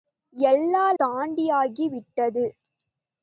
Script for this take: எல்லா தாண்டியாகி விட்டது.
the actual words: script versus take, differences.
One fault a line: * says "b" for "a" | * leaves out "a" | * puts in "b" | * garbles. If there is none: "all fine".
all fine